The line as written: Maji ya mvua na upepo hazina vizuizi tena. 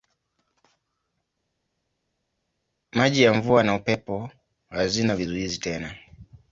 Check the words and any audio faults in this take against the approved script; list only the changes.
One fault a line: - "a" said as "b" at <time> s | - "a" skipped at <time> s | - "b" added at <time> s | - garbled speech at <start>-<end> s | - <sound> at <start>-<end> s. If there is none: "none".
none